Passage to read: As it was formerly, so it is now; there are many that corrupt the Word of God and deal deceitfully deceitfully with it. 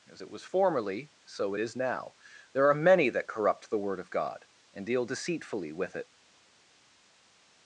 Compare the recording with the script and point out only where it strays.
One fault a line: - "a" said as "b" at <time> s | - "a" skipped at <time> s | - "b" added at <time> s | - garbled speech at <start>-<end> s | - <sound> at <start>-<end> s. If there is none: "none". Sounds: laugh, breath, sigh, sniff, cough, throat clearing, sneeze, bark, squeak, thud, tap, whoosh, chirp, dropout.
- "deceitfully" skipped at 5.7 s